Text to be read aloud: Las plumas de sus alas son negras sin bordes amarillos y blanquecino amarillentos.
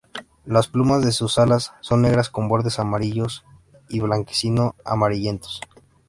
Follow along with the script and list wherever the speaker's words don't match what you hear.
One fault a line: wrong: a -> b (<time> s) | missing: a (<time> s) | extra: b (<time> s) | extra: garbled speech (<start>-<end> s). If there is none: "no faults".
wrong: sin -> con (2.3 s)